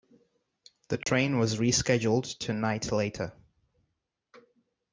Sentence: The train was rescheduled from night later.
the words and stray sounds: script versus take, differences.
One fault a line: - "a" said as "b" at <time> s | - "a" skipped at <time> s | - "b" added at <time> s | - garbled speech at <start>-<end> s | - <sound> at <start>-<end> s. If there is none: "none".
- dropout at 1.0-1.1 s
- "from" said as "to" at 2.4 s